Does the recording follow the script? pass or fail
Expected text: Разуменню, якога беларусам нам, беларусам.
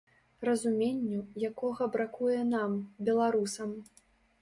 fail